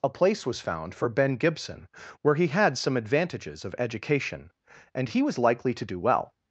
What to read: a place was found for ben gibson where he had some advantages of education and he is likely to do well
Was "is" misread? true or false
true